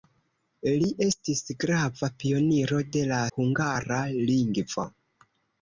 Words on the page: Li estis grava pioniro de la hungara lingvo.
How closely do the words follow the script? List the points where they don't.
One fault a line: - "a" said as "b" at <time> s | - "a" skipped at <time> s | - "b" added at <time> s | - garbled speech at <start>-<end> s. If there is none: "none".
none